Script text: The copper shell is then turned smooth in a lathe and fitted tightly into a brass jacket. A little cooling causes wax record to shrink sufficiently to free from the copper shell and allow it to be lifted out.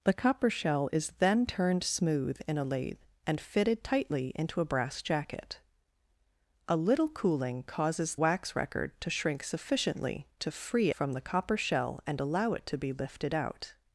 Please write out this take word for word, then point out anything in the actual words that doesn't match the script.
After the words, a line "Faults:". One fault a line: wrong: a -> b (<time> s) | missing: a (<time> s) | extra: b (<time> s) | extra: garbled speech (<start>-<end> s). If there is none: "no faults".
The copper shell is then turned smooth in a lathe and fitted tightly into a brass jacket. A little cooling causes wax record to shrink sufficiently to free from the copper shell and allow it to be lifted out.
Faults:
no faults